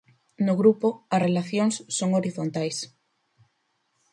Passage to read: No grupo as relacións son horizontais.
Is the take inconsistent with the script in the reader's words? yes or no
no